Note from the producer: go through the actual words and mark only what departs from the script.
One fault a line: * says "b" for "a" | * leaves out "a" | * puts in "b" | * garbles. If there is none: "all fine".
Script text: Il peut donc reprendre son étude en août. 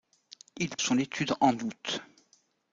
* leaves out "peut donc reprendre"